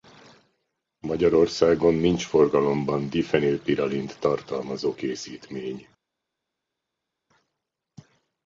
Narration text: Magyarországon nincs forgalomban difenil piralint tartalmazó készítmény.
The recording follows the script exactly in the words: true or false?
true